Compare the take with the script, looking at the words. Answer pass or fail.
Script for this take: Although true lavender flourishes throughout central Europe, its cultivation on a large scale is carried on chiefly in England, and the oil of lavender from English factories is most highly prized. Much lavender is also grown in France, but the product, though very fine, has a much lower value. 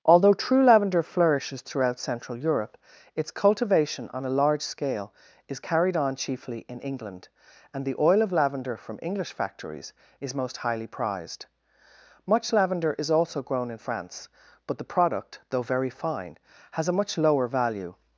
pass